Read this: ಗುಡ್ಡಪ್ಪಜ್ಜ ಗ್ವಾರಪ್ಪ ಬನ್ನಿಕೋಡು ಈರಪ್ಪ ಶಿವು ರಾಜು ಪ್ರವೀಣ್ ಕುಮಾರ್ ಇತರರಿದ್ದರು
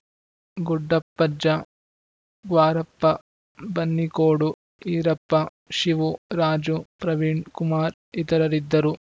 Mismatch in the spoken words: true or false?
false